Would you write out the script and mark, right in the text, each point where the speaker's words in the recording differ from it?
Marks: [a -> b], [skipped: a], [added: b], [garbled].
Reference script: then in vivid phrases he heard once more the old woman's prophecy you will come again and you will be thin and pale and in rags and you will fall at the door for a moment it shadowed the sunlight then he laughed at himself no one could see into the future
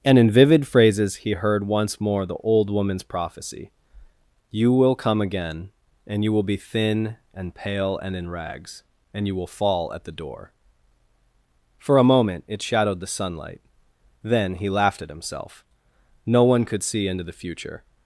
[then -> and] in vivid phrases he heard once more the old woman's prophecy you will come again and you will be thin and pale and in rags and you will fall at the door for a moment it shadowed the sunlight then he laughed at himself no one could see into the future